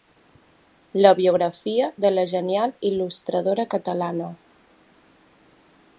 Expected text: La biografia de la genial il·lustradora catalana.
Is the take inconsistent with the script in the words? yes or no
no